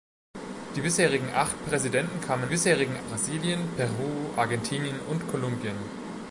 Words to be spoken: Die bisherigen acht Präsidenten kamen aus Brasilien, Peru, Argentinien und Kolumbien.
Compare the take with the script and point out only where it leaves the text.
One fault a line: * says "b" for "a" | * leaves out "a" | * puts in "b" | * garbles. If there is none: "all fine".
* says "bisherigen" for "aus"